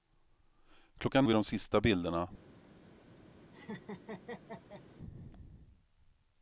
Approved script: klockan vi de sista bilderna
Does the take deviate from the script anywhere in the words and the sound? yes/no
yes